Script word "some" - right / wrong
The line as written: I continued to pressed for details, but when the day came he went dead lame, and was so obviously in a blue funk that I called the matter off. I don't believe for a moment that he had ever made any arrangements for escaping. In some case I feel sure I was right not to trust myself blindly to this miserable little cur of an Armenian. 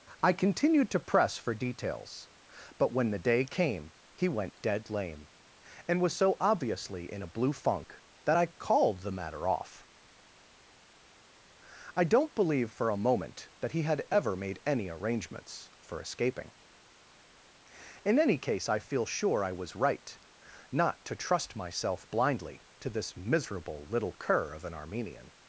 wrong